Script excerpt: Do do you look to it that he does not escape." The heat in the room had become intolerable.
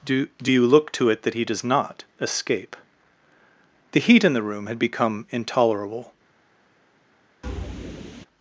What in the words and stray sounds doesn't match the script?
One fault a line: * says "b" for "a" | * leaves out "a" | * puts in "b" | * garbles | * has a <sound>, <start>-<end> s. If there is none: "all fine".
* has a thud, 7.4-8.3 s